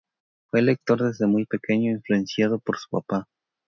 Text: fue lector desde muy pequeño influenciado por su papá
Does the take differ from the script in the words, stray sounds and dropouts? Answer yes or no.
no